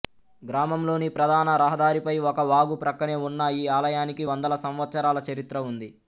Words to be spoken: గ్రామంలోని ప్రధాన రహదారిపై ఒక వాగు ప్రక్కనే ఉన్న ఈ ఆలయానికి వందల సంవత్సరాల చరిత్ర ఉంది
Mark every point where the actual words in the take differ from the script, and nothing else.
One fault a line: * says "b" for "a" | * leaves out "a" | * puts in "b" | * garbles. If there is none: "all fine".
all fine